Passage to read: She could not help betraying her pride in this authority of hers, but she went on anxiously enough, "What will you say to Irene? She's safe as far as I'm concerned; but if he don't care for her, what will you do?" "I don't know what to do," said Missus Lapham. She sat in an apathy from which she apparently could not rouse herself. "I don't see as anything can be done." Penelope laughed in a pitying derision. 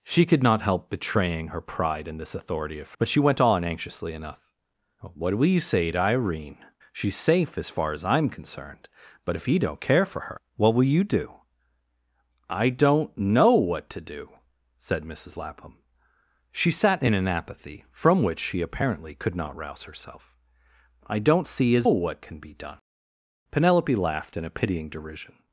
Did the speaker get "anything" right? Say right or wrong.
wrong